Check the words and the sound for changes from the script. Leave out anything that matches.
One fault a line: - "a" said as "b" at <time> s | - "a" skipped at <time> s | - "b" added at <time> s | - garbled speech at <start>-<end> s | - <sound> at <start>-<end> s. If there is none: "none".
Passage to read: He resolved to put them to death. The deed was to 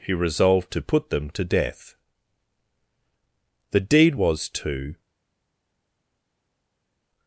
none